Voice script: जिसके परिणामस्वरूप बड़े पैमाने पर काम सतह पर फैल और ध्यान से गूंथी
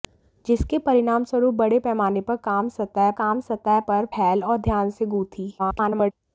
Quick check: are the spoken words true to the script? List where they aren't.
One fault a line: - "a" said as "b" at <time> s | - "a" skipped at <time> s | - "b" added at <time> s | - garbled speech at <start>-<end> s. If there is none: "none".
- "काम सतह" added at 3.2 s
- garbled speech at 5.6-6.1 s